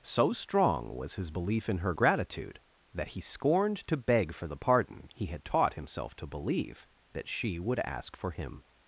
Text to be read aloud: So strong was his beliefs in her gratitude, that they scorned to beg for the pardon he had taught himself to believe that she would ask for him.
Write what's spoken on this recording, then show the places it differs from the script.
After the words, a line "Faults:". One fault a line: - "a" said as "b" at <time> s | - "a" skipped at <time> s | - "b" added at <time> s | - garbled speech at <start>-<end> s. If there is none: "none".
So strong was his belief in her gratitude, that he scorned to beg for the pardon he had taught himself to believe that she would ask for him.
Faults:
- "beliefs" said as "belief" at 1.3 s
- "they" said as "he" at 3.1 s